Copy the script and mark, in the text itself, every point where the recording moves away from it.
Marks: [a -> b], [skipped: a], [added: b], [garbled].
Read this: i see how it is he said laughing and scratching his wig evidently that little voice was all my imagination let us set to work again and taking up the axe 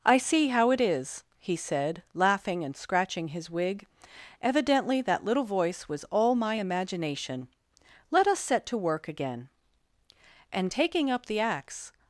i see how it is he said laughing and scratching his wig evidently that little voice was all my imagination let us set to work again and taking up the axe